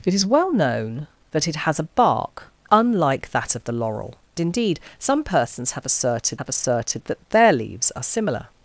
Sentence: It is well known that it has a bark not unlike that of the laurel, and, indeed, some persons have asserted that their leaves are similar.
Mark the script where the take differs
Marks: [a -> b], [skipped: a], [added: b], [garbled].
It is well known that it has a bark [skipped: not] unlike that of the laurel, [skipped: and,] indeed, some persons have asserted [added: have asserted] that their leaves are similar.